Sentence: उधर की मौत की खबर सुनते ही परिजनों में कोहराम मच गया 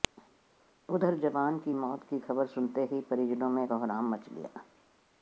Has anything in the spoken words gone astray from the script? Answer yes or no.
yes